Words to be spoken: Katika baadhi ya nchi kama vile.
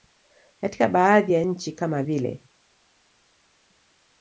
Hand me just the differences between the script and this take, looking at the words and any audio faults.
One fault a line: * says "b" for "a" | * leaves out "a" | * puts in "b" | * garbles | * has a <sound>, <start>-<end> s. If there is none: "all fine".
all fine